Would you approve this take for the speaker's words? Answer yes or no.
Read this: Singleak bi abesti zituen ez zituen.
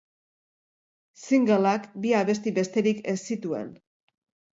no